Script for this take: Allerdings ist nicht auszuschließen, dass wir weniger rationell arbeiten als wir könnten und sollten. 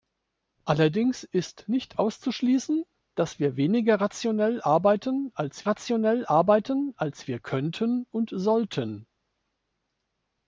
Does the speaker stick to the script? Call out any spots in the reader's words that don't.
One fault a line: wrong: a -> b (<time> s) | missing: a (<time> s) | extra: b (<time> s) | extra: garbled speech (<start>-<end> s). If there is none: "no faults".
extra: rationell arbeiten als (5.7 s)